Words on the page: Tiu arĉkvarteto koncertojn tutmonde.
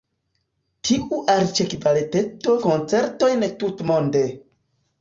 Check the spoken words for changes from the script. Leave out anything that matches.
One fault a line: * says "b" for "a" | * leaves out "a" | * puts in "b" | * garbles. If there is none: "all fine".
all fine